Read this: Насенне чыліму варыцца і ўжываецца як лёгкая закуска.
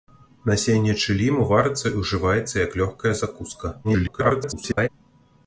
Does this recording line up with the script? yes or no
no